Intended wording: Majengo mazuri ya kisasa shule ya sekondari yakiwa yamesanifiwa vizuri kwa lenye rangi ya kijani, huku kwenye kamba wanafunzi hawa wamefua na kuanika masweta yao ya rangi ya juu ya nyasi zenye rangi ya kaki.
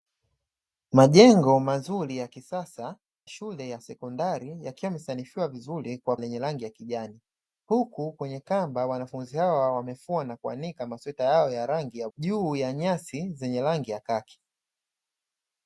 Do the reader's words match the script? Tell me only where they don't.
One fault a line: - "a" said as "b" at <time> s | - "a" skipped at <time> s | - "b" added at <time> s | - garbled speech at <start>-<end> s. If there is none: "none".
none